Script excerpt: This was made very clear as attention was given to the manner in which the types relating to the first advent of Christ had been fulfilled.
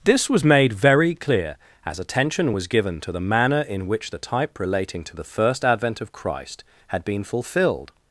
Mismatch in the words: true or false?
true